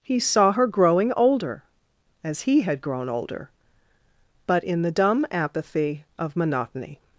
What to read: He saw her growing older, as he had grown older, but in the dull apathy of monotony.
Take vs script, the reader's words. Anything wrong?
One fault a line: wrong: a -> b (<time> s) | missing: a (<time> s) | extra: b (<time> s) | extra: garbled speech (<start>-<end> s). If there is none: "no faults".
wrong: dull -> dumb (4.9 s)